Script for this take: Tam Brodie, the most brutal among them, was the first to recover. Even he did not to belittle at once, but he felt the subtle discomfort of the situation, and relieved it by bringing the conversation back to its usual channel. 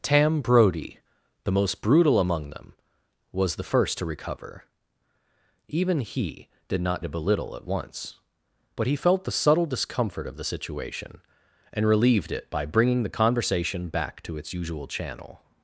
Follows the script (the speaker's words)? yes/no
yes